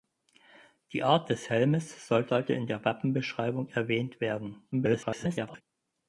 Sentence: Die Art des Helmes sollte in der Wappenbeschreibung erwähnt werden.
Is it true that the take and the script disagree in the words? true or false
true